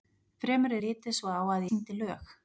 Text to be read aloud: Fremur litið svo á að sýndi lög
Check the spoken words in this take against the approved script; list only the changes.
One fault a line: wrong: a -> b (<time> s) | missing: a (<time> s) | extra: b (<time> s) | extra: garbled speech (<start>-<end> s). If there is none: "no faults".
no faults